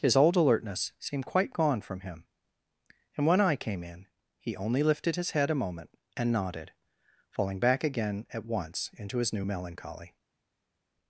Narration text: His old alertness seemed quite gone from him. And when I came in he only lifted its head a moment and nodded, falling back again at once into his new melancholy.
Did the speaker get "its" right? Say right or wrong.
wrong